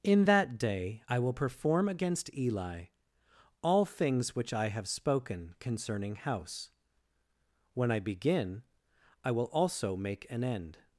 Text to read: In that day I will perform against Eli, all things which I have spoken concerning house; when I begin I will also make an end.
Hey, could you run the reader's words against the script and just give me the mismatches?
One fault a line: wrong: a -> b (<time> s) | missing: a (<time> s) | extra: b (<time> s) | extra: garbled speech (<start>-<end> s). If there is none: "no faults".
no faults